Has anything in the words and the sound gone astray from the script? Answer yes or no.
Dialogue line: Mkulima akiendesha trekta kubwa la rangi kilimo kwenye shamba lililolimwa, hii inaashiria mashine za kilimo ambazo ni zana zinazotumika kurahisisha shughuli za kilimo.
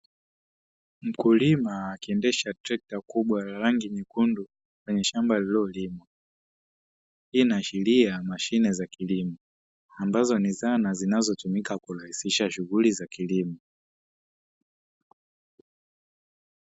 yes